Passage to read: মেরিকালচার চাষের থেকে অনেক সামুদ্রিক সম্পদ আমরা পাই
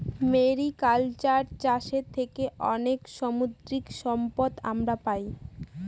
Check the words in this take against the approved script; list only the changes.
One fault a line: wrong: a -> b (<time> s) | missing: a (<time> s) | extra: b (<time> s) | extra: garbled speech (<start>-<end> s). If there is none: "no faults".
no faults